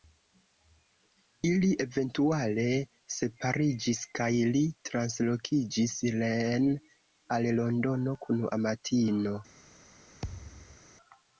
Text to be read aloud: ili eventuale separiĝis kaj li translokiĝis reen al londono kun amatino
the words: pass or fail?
pass